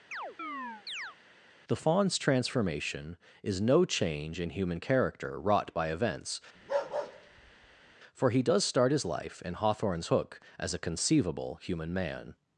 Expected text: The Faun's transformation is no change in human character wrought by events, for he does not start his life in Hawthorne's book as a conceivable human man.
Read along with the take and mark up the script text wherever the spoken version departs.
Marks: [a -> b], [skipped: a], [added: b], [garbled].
The Faun's transformation is no change in human character wrought by events, for he does [skipped: not] start his life in Hawthorne's [book -> hook] as a conceivable human man.